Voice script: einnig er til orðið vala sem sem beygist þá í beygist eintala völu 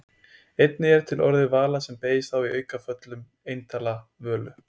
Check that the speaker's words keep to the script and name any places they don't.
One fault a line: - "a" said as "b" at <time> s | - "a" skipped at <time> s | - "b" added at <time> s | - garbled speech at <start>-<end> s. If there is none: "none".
- "sem" skipped at 2.0 s
- "beygist" said as "aukaföllum" at 2.6 s